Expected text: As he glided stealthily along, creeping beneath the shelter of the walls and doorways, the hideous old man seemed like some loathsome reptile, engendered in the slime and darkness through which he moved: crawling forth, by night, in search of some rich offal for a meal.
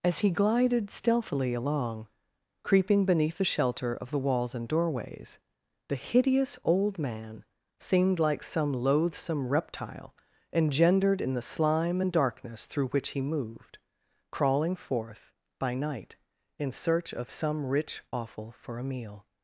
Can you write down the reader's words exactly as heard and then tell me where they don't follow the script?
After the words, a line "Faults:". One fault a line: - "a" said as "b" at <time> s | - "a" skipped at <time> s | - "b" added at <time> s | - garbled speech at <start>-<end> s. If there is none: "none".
As he glided stealthily along, creeping beneath the shelter of the walls and doorways, the hideous old man seemed like some loathsome reptile, engendered in the slime and darkness through which he moved: crawling forth, by night, in search of some rich offal for a meal.
Faults:
none